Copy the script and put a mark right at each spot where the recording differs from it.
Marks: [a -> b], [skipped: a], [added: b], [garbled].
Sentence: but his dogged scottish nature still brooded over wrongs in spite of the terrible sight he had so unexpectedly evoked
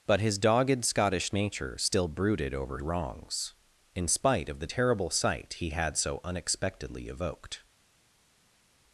but his dogged scottish nature still brooded over wrongs in spite of the terrible sight he had so unexpectedly evoked